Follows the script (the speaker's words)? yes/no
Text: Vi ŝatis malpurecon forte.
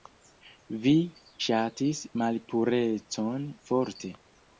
yes